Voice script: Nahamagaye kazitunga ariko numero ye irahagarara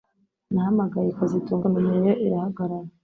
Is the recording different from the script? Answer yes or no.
yes